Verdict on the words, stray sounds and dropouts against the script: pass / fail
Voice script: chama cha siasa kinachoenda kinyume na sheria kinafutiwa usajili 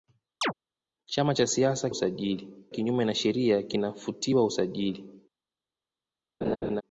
fail